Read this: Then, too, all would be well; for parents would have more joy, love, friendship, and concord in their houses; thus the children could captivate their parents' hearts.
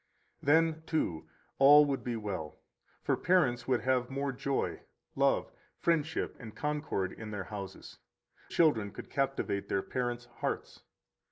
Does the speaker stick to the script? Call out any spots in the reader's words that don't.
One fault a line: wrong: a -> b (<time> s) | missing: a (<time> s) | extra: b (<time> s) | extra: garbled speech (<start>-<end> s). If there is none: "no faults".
missing: thus the (8.0 s)